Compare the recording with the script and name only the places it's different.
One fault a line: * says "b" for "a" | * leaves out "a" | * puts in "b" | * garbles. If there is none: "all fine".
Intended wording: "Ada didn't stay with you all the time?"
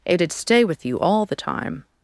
* leaves out "didn't"